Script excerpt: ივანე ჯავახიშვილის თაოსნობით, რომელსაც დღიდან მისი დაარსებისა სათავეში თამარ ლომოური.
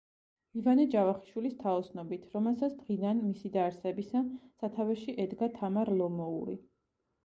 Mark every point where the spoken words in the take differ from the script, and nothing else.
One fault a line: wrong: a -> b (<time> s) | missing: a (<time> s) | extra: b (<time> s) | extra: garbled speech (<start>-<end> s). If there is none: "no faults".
extra: ედგა (5.3 s)